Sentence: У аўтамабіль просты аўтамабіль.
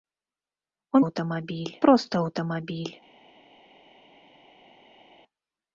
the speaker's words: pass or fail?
pass